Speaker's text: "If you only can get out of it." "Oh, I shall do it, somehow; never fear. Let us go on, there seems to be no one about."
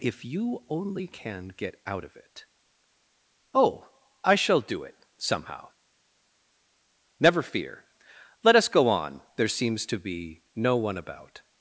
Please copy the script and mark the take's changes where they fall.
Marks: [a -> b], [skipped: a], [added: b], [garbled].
"If you only can get out of it." "Oh, I shall do it, somehow; never fear. Let us go on, there seems to be no one about."